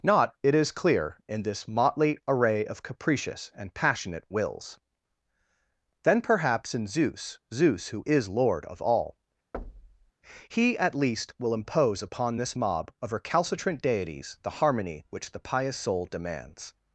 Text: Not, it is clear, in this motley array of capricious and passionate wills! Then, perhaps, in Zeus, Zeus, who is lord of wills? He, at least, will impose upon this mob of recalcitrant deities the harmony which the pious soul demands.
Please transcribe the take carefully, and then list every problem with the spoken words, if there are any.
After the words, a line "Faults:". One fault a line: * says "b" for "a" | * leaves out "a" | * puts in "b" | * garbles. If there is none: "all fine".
Not, it is clear, in this motley array of capricious and passionate wills! Then, perhaps, in Zeus, Zeus, who is lord of all? He, at least, will impose upon this mob of recalcitrant deities the harmony which the pious soul demands.
Faults:
* says "all" for "wills"